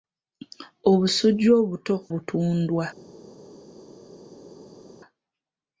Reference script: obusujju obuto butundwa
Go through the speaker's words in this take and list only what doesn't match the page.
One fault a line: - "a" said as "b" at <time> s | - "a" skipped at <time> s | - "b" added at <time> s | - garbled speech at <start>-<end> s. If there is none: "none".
none